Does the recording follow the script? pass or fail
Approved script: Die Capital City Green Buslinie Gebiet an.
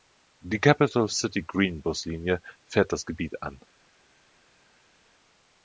fail